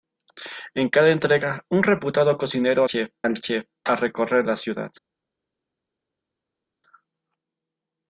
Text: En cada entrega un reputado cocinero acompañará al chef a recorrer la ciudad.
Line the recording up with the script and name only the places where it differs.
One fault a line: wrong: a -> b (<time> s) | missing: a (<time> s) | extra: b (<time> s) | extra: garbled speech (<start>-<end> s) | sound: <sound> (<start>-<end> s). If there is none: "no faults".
wrong: acompañará -> chef (2.8 s)